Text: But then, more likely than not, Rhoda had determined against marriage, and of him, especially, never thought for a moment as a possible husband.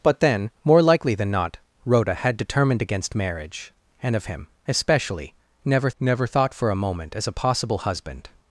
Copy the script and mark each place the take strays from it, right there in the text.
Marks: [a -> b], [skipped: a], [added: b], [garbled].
But then, more likely than not, Rhoda had determined against marriage, and of him, especially, never [added: never] thought for a moment as a possible husband.